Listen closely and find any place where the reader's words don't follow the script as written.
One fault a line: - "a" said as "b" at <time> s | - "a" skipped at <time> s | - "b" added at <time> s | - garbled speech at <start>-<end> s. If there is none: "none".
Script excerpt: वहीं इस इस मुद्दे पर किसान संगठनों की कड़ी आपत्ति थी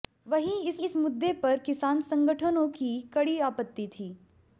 none